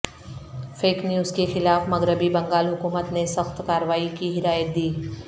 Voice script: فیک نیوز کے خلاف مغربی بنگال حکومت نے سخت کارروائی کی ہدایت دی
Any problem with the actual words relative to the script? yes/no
no